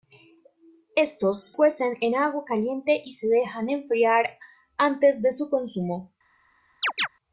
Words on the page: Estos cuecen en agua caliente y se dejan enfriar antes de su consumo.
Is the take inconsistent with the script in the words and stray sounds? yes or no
yes